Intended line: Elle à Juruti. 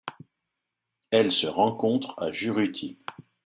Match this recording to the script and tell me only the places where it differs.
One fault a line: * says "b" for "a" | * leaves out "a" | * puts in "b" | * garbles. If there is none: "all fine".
* puts in "se rencontre"